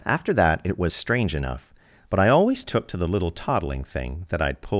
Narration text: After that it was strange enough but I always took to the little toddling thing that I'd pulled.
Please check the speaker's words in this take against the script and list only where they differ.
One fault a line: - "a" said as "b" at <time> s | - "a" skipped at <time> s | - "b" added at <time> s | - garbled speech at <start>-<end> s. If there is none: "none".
none